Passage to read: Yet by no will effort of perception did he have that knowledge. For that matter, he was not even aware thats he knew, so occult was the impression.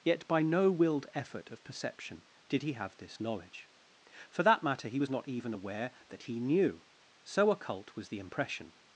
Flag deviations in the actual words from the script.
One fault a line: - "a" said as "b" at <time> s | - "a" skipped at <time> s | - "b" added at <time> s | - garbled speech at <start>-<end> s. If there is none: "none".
- "will" said as "willed" at 0.7 s
- "that" said as "this" at 3.0 s
- "thats" said as "that" at 6.1 s